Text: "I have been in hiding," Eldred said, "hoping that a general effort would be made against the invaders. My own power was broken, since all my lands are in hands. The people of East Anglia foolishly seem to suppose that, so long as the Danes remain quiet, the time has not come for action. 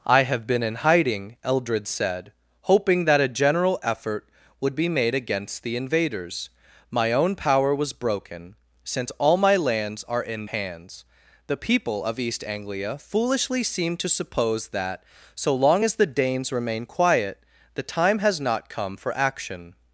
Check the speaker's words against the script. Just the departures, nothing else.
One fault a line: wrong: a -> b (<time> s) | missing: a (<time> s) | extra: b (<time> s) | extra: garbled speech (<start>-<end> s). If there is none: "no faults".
no faults